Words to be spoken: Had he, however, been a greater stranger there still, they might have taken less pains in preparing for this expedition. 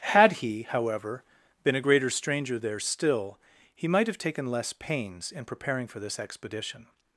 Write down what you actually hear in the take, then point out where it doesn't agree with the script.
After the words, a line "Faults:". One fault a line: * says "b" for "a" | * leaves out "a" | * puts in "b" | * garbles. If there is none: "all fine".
Had he, however, been a greater stranger there still, he might have taken less pains in preparing for this expedition.
Faults:
* says "he" for "they"